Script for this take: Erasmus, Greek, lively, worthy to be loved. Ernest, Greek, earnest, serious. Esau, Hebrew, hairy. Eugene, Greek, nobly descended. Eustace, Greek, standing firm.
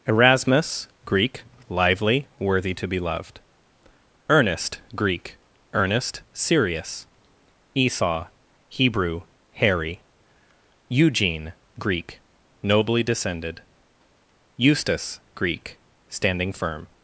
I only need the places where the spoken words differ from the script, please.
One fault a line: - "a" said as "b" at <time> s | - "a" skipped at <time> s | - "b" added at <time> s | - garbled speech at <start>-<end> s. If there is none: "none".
none